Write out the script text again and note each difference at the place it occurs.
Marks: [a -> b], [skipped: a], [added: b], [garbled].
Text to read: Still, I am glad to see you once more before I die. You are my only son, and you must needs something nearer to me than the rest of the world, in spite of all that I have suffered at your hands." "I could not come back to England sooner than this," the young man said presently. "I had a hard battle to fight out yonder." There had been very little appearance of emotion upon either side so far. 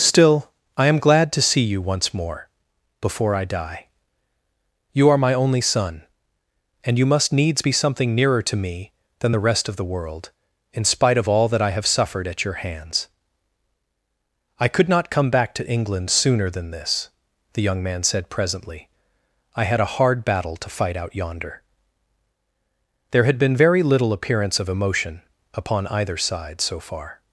Still, I am glad to see you once more before I die. You are my only son, and you must needs [added: be] something nearer to me than the rest of the world, in spite of all that I have suffered at your hands." "I could not come back to England sooner than this," the young man said presently. "I had a hard battle to fight out yonder." There had been very little appearance of emotion upon either side so far.